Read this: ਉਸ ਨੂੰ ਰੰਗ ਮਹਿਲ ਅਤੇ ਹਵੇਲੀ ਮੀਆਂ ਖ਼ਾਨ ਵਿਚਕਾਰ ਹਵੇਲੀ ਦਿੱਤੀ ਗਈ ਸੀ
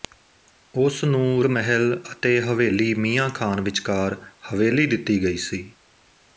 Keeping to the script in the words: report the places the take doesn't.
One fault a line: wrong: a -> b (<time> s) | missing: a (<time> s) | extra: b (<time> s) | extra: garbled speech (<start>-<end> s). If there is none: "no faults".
missing: ਰੰਗ (1.4 s)